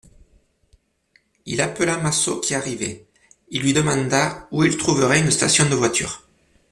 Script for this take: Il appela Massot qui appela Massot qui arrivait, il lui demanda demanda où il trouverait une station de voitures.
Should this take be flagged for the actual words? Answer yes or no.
yes